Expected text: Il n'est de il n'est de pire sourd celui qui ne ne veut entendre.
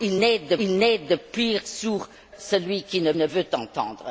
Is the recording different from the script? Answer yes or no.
no